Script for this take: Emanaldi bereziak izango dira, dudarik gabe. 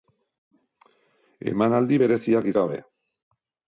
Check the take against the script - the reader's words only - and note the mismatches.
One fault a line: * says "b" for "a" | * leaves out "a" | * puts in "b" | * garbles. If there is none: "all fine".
* leaves out "izango dira dudarik"